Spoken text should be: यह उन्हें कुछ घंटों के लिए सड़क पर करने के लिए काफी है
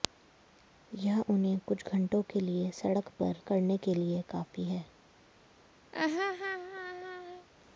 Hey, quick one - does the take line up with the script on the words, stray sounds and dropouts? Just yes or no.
no